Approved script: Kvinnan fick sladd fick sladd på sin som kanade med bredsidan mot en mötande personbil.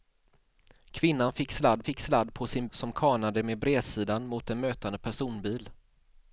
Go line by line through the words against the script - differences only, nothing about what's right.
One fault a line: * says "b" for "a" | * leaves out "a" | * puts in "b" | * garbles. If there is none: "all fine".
all fine